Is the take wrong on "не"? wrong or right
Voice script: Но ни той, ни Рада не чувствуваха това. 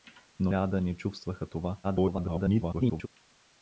right